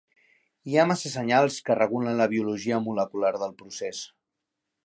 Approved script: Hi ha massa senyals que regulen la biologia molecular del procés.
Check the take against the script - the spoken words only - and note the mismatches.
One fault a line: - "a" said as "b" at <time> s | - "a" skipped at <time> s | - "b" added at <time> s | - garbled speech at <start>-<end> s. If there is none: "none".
none